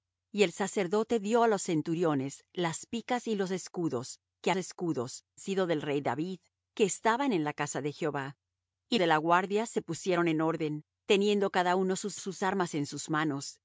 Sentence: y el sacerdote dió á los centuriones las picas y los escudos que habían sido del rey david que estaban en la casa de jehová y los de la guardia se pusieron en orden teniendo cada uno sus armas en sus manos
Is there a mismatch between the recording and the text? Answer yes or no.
yes